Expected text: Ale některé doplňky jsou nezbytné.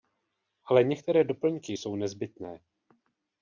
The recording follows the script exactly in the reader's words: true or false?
true